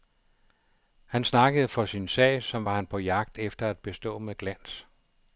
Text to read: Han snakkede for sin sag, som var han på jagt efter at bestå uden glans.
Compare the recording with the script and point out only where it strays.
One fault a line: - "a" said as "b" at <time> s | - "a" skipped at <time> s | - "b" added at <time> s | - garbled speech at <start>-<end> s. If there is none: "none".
- "uden" said as "med" at 4.2 s